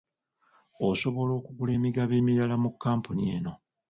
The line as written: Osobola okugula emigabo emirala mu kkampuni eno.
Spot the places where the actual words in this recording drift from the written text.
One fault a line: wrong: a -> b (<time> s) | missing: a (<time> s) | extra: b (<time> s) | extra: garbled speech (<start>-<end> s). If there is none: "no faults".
no faults